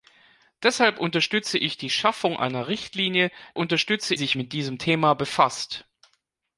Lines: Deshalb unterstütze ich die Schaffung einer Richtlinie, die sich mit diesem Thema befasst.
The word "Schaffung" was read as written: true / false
true